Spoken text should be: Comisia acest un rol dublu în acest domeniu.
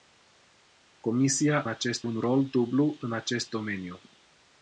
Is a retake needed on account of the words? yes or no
no